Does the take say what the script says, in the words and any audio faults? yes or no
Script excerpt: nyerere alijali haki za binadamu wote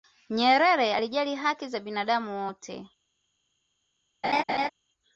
no